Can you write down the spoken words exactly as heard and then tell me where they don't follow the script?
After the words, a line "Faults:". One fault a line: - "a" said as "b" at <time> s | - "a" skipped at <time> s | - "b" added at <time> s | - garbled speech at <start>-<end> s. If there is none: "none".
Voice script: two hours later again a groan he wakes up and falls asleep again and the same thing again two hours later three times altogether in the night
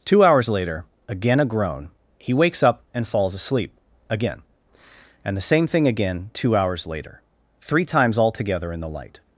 two hours later again a groan he wakes up and falls asleep again and the same thing again two hours later three times altogether in the light
Faults:
- "night" said as "light" at 8.9 s